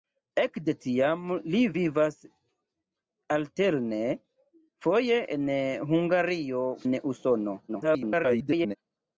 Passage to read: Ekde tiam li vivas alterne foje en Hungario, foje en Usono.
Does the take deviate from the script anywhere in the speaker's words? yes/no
yes